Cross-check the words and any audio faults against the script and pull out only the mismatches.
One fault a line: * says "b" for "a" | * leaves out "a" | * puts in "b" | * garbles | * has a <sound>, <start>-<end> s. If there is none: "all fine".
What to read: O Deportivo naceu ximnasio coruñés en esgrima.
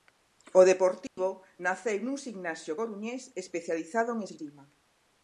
* has a dropout, 1.1-1.2 s
* puts in "nun"
* puts in "especializado"